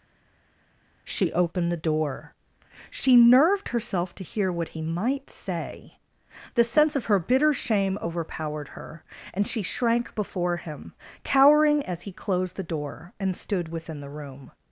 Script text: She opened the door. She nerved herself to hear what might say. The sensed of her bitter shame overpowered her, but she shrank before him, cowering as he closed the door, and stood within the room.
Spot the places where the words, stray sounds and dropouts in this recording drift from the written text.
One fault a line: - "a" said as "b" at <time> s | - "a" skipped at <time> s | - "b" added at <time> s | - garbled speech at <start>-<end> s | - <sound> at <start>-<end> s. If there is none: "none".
- "he" added at 4.7 s
- "sensed" said as "sense" at 6.7 s
- "but" said as "and" at 9.3 s